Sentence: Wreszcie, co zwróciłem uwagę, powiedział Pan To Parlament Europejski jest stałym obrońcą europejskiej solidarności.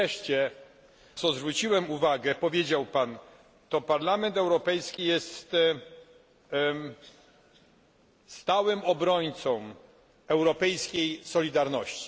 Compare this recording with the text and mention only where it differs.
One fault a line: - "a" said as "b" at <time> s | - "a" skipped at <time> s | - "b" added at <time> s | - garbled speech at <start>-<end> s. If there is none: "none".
none